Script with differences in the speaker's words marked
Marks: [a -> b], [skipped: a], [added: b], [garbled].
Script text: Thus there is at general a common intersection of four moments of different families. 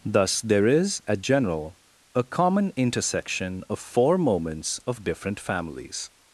Thus there is at general a common intersection of four moments of different families.